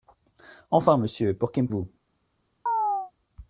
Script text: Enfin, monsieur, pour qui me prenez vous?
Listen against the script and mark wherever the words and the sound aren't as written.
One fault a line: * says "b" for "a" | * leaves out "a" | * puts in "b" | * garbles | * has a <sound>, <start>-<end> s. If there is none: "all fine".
* leaves out "prenez"
* has a chirp, 2.7-3.1 s